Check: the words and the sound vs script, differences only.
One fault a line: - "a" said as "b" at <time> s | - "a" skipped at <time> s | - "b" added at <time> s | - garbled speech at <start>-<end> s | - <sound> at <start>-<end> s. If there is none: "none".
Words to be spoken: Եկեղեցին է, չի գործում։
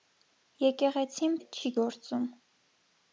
none